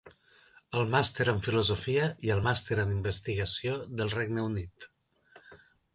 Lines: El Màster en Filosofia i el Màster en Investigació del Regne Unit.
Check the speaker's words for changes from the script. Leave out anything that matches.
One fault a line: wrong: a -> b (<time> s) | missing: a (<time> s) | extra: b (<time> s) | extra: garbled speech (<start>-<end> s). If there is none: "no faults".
no faults